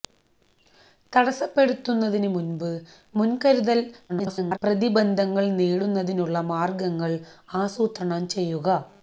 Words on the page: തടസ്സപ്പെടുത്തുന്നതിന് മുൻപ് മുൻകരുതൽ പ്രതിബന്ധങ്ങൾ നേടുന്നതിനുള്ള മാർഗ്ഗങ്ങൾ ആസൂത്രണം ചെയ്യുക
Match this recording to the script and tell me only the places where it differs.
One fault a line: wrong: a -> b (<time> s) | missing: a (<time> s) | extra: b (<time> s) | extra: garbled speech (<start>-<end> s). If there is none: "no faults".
extra: garbled speech (4.1-4.6 s)